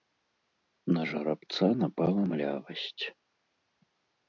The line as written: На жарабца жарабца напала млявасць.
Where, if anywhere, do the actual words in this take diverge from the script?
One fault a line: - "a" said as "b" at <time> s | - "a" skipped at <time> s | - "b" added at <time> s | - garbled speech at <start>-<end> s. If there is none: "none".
- "жарабца" skipped at 1.7 s